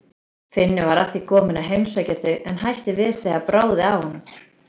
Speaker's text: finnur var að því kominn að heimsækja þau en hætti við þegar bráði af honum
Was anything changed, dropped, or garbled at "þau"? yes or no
no